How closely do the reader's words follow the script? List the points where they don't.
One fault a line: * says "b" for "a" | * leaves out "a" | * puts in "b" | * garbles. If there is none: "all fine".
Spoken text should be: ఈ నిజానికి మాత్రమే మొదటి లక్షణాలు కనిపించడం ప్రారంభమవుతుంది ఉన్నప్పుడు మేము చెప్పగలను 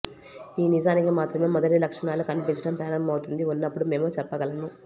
all fine